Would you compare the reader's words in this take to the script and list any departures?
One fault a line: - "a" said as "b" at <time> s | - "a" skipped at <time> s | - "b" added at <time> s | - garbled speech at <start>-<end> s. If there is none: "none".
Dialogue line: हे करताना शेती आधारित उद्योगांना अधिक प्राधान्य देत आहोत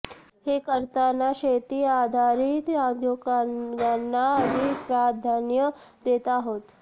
none